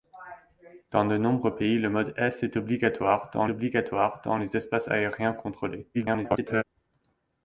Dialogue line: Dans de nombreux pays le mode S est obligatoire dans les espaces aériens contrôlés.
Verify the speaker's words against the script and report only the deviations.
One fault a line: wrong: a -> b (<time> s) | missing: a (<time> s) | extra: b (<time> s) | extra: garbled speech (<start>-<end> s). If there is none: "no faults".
extra: obligatoire dans (3.5 s)
extra: garbled speech (5.9-6.6 s)